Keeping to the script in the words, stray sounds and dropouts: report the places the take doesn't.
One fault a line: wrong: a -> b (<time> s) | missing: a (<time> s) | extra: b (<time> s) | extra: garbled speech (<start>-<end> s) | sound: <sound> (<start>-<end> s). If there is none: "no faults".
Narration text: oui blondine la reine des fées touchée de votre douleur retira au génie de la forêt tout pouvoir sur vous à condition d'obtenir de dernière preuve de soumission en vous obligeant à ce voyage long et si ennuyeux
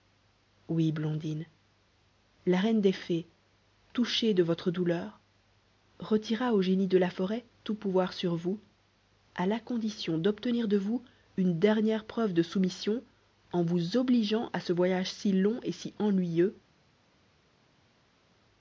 extra: la (9.4 s)
extra: vous une (10.8 s)
extra: si (15.1 s)